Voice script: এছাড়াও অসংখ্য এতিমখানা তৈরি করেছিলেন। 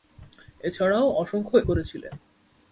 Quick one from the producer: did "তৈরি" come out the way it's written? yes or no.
no